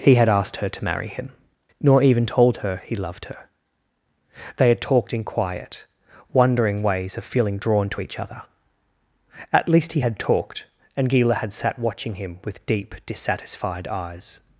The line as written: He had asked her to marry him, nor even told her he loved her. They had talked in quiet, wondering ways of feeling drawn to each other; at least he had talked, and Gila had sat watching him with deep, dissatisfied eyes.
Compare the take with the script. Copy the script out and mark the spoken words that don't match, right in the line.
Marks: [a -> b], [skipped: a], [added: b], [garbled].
He had asked her to marry him, nor even told her he loved her. They had talked in quiet, wondering ways of feeling drawn to each other; at least he had talked, and Gila had sat watching him with deep, dissatisfied eyes.